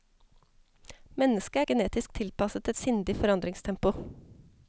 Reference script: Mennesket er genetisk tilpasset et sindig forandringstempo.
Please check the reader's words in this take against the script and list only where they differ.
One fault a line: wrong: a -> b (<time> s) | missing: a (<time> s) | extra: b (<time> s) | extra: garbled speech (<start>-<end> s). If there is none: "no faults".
no faults